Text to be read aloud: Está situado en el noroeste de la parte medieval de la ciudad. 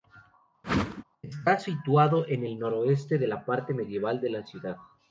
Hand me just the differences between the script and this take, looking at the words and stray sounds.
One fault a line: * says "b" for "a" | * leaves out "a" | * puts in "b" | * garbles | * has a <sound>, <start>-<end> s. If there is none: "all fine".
* has a whoosh, 0.6-1.0 s